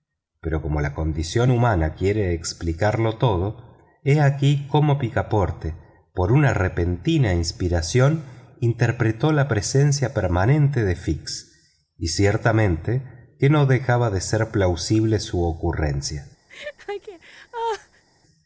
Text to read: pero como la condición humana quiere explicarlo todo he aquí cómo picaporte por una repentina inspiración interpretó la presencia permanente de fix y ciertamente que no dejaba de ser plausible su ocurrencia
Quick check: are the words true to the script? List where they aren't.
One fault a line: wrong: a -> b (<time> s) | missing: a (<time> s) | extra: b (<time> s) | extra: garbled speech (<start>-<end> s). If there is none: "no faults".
no faults